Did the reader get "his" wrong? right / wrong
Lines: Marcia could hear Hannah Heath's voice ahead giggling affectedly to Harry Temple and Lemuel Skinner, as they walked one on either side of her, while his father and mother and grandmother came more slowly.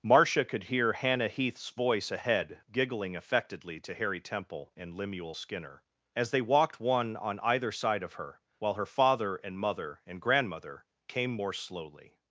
wrong